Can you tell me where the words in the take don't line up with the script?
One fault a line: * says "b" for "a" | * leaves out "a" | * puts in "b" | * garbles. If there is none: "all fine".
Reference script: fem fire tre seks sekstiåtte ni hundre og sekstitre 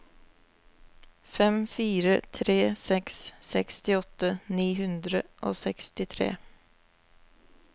all fine